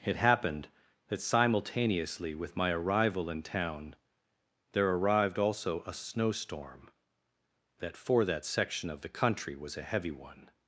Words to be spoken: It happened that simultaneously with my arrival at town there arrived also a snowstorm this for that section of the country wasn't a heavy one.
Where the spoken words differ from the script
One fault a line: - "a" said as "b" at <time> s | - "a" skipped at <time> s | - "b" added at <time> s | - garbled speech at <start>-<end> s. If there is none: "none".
- "at" said as "in" at 3.3 s
- "this" said as "that" at 7.8 s
- "wasn't" said as "was" at 9.6 s